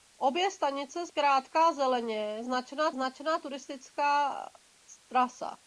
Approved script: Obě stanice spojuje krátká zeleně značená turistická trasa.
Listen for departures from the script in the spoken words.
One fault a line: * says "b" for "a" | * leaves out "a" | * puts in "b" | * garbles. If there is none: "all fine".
* leaves out "spojuje"
* puts in "značená"